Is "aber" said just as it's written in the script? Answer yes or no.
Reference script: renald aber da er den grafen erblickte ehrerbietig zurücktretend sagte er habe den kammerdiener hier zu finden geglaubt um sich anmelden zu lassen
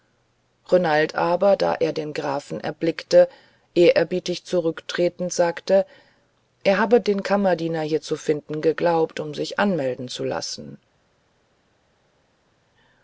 yes